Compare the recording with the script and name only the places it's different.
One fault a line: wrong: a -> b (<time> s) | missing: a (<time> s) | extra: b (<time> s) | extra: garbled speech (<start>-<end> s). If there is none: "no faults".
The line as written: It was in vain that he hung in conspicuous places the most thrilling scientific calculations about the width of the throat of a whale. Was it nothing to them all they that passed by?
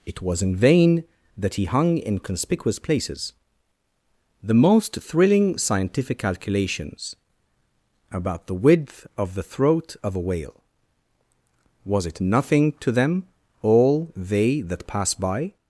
wrong: passed -> pass (14.9 s)